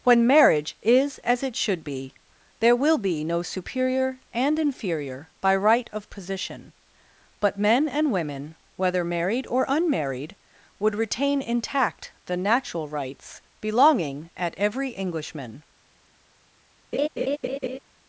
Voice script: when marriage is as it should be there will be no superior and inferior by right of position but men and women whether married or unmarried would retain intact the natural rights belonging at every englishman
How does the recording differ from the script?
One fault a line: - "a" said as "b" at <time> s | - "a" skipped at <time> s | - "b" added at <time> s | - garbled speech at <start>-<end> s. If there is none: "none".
none